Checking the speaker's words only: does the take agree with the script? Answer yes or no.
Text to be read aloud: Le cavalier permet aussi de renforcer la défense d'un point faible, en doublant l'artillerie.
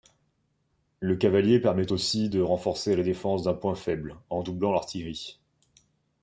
yes